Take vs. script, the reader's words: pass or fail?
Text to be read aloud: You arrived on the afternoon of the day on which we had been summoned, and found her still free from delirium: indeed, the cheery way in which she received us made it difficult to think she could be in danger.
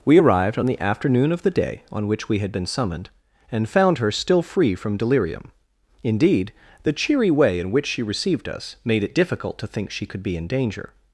fail